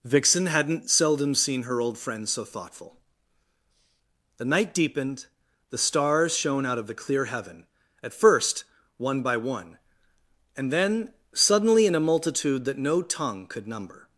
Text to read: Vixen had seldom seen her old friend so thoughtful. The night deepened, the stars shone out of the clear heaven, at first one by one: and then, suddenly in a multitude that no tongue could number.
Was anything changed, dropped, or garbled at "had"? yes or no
yes